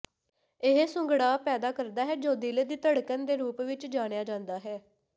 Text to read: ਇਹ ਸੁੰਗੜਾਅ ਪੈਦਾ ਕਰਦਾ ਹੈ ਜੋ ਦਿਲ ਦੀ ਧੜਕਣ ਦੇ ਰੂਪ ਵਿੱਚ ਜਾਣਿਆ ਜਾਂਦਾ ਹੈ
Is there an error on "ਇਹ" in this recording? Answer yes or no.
no